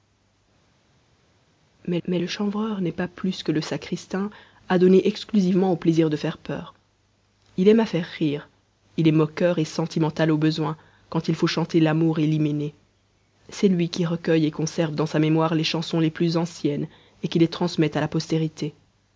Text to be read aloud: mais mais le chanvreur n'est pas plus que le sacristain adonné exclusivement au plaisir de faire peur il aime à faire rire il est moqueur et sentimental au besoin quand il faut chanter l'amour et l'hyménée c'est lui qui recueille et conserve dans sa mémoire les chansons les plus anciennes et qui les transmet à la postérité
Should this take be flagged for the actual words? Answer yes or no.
no